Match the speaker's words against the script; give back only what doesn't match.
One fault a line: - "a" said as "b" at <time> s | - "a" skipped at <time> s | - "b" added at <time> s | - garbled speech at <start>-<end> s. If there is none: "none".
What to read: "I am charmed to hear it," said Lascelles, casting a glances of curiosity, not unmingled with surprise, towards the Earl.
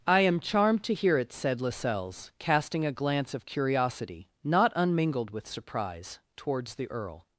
- "glances" said as "glance" at 2.9 s